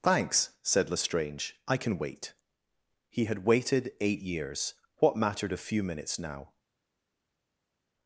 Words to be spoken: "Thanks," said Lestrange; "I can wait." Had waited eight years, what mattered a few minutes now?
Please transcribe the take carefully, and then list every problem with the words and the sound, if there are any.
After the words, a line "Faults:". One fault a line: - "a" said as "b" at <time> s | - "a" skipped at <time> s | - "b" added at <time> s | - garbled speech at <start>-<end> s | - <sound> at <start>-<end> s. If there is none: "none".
"Thanks," said Lestrange; "I can wait." He had waited eight years, what mattered a few minutes now?
Faults:
- "He" added at 3.1 s